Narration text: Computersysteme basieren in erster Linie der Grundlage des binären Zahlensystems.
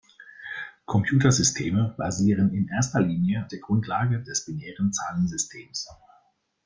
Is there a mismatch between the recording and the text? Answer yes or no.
no